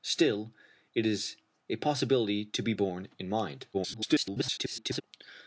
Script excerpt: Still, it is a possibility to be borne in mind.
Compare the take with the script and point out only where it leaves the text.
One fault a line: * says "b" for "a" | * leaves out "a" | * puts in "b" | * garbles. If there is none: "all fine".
* garbles